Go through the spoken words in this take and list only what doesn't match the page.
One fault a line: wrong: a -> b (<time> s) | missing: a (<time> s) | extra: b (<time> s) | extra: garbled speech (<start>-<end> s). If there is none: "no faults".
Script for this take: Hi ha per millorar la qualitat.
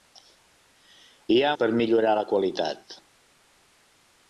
no faults